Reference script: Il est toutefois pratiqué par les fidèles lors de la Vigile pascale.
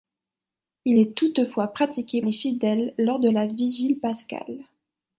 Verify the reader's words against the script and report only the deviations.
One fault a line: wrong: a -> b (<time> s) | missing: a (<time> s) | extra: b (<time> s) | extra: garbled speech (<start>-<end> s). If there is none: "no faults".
missing: par (2.2 s)